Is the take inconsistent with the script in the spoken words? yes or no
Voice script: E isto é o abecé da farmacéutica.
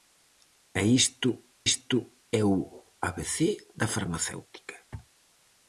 yes